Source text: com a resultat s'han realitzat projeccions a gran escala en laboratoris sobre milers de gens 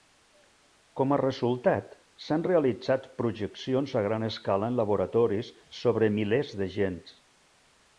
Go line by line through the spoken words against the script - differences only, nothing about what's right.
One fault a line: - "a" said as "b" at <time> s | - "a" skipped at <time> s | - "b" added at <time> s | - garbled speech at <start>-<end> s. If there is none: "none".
none